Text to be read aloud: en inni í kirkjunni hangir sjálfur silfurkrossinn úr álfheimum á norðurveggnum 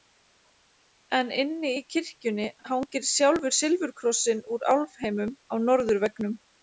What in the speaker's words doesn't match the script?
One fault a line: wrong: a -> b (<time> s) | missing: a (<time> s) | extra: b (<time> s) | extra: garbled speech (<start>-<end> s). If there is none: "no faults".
no faults